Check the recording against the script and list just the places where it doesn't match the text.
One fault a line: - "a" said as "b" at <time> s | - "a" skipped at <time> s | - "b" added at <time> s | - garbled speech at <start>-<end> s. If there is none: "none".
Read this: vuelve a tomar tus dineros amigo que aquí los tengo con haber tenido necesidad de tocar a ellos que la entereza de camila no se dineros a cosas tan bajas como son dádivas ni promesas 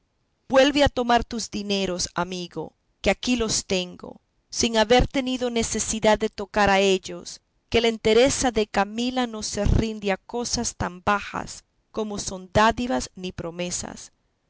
- "con" said as "sin" at 4.5 s
- "dineros" said as "rinde" at 9.7 s